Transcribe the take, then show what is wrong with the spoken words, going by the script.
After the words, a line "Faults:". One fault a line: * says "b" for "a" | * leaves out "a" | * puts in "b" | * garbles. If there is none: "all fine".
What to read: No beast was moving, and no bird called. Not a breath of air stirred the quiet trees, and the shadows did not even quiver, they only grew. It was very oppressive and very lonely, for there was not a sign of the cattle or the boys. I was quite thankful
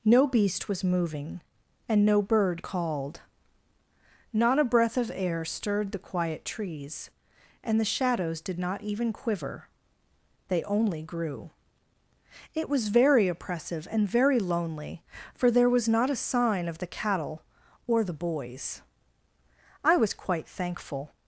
No beast was moving, and no bird called. Not a breath of air stirred the quiet trees, and the shadows did not even quiver, they only grew. It was very oppressive and very lonely, for there was not a sign of the cattle or the boys. I was quite thankful
Faults:
all fine